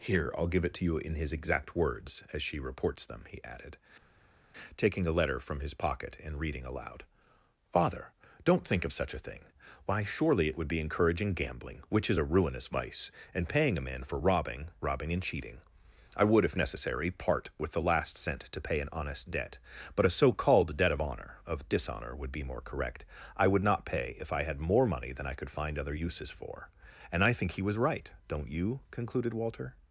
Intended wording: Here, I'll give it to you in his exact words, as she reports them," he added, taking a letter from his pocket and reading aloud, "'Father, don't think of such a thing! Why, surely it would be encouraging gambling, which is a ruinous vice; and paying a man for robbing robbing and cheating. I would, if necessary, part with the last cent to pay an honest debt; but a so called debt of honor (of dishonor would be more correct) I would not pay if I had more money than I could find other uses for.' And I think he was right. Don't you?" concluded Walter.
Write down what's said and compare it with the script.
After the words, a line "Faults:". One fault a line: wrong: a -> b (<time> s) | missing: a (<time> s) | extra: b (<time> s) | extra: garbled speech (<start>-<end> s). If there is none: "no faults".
Here, I'll give it to you in his exact words, as she reports them," he added, taking a letter from his pocket and reading aloud, "'Father, don't think of such a thing! Why, surely it would be encouraging gambling, which is a ruinous vice; and paying a man for robbing robbing and cheating. I would, if necessary, part with the last cent to pay an honest debt; but a so called debt of honor (of dishonor would be more correct) I would not pay if I had more money than I could find other uses for.' And I think he was right. Don't you?" concluded Walter.
Faults:
no faults